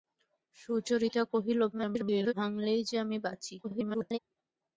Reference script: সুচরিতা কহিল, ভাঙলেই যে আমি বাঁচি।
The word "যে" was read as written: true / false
true